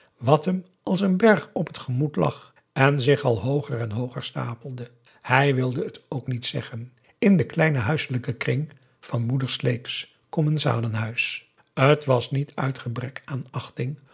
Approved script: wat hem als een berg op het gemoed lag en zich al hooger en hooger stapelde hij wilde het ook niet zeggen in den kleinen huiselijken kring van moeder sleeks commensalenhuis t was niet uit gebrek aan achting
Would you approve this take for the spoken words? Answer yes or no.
yes